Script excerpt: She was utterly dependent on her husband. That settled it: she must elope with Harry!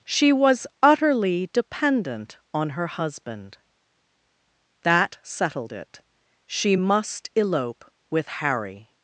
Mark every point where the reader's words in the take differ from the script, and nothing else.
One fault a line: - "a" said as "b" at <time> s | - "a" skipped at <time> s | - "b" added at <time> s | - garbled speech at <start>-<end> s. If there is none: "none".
none